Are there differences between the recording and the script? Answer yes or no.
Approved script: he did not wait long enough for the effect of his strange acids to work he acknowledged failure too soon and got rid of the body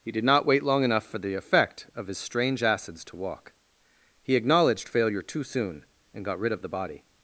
yes